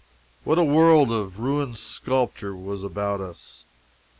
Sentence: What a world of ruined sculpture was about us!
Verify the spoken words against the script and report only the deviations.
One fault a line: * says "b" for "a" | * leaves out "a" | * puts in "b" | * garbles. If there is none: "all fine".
all fine